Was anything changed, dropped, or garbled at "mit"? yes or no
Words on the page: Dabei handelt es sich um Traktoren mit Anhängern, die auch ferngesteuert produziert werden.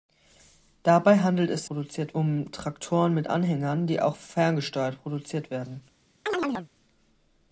no